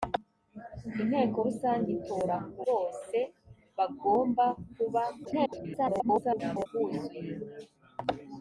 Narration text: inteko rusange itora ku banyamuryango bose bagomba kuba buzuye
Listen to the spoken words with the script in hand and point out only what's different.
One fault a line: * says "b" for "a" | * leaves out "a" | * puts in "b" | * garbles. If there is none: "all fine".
* leaves out "banyamuryango"
* garbles